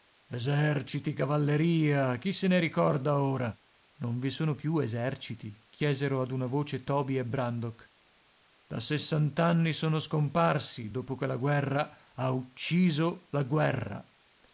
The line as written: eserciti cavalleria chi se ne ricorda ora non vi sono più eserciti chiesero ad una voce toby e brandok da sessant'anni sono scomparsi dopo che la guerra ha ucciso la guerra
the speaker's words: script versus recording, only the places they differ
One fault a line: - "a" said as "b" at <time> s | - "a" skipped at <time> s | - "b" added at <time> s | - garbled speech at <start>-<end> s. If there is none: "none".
none